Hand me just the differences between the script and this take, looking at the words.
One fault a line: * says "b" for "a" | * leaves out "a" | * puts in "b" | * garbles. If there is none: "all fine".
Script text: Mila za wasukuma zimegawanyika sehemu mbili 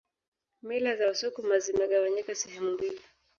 all fine